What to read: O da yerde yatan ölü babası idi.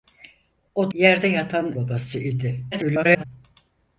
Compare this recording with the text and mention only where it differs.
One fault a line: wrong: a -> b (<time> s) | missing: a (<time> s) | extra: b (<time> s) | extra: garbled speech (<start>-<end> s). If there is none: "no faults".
missing: da (0.9 s)
missing: ölü (1.7 s)
extra: garbled speech (2.7-3.2 s)